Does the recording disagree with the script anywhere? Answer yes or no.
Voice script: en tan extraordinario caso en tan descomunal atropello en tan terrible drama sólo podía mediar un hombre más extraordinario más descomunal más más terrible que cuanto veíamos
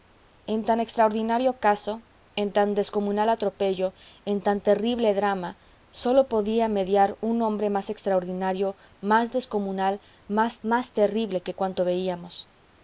no